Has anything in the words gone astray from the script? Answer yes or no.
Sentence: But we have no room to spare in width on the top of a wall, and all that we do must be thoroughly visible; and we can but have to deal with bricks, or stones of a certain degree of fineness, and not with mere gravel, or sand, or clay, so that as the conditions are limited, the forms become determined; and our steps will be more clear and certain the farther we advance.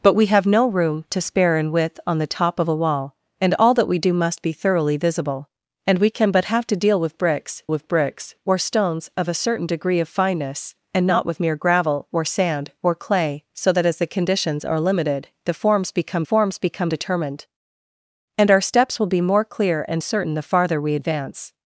yes